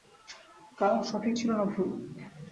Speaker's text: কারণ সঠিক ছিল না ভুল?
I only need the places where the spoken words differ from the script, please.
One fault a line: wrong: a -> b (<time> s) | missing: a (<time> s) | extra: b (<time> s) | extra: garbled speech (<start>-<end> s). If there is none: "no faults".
no faults